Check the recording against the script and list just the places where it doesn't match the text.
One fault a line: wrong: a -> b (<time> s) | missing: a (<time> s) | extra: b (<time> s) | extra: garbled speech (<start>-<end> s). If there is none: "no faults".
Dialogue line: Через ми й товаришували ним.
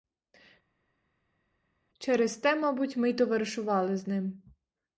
extra: те мабуть (2.4 s)
extra: з (4.0 s)